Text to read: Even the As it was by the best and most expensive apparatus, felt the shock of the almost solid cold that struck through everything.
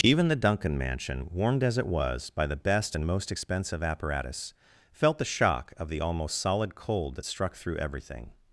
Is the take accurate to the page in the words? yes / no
no